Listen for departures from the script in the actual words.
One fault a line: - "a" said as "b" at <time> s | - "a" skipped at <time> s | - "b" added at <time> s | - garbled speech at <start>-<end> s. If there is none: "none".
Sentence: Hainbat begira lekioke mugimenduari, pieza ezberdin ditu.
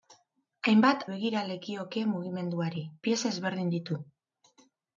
none